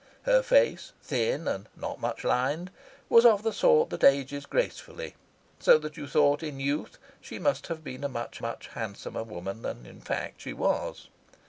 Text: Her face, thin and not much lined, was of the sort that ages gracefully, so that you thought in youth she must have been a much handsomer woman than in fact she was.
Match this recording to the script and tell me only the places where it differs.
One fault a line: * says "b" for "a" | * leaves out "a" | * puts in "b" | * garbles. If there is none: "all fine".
* puts in "much"